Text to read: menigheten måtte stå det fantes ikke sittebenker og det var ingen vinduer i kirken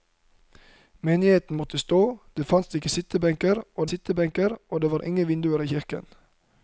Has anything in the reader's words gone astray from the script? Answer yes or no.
yes